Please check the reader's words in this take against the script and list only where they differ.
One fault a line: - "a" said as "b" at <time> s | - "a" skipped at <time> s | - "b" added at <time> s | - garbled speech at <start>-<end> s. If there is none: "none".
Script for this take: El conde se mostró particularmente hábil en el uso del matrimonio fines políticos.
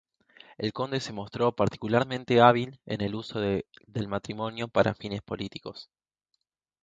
- "para" added at 4.7 s